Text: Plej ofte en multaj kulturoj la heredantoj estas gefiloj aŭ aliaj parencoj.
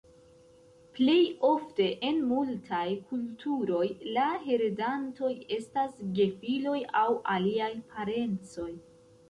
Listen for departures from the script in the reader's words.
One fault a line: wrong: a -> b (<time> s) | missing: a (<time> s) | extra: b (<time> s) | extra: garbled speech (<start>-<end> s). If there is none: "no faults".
no faults